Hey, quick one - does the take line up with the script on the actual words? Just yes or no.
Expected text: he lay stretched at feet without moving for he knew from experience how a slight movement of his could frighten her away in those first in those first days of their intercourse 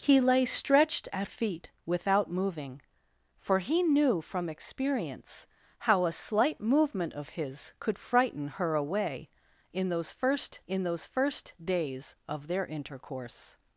yes